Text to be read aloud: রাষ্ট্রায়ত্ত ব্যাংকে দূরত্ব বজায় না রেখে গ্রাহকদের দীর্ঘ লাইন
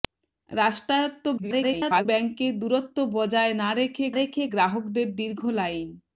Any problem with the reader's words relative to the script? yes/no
yes